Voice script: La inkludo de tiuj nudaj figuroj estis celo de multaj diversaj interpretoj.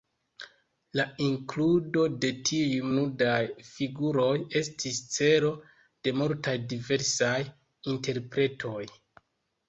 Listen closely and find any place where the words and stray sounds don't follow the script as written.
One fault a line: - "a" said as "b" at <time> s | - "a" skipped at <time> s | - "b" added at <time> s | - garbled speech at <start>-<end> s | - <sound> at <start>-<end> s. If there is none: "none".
none